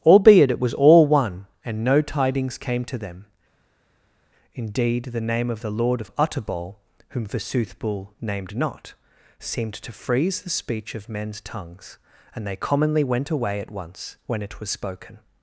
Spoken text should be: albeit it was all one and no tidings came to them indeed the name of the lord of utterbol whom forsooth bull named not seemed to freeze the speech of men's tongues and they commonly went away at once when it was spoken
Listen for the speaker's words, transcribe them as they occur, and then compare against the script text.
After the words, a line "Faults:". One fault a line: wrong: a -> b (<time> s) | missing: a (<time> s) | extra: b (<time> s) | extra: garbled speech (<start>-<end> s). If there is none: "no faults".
albeit it was all one and no tidings came to them indeed the name of the lord of utterbol whom forsooth bull named not seemed to freeze the speech of men's tongues and they commonly went away at once when it was spoken
Faults:
no faults